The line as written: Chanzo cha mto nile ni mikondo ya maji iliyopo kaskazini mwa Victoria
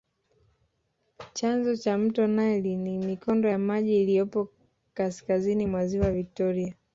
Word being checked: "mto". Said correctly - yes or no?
yes